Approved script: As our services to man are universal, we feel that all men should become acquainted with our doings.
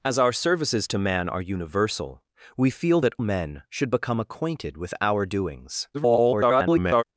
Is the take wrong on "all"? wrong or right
wrong